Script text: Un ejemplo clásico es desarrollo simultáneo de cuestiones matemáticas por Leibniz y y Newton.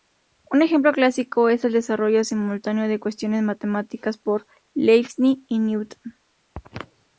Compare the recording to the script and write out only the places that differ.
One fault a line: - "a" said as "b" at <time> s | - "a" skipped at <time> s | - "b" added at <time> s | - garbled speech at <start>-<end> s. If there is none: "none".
- "el" added at 1.6 s
- "y" skipped at 5.6 s